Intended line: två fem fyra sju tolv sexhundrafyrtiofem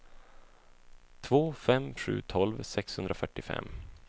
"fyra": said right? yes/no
no